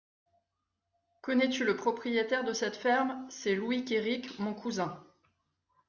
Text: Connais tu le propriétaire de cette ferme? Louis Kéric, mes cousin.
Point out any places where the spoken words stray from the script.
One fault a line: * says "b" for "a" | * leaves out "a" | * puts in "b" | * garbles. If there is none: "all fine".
* puts in "C'est"
* says "mon" for "mes"